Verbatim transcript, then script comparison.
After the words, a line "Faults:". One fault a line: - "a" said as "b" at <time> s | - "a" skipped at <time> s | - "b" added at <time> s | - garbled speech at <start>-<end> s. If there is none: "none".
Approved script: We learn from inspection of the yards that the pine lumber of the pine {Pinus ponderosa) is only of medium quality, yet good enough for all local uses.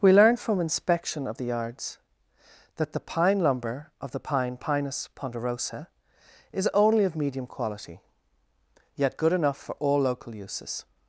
We learn from inspection of the yards that the pine lumber of the pine {Pinus ponderosa) is only of medium quality, yet good enough for all local uses.
Faults:
none